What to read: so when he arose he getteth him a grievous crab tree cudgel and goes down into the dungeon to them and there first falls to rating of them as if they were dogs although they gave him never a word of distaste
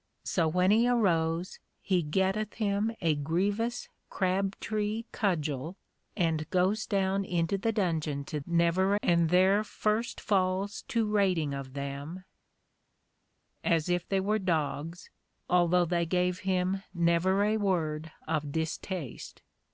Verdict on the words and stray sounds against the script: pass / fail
fail